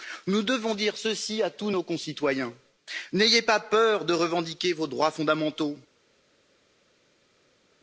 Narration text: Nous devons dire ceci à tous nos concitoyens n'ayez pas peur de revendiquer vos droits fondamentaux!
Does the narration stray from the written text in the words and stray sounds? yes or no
no